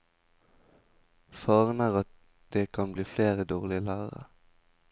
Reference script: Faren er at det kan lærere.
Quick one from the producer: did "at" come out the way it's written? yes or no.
yes